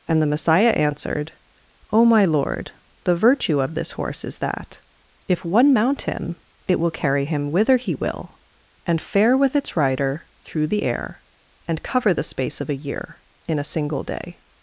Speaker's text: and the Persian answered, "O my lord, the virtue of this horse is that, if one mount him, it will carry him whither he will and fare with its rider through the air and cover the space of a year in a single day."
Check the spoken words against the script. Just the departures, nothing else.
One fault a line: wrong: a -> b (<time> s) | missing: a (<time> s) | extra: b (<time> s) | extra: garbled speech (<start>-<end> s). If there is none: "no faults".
wrong: Persian -> Messiah (0.3 s)